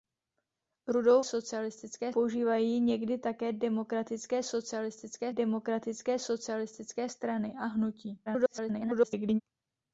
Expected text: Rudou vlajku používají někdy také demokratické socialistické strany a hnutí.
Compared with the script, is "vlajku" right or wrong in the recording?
wrong